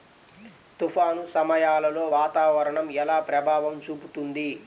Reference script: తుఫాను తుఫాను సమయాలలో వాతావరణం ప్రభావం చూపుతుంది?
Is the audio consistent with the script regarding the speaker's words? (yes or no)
no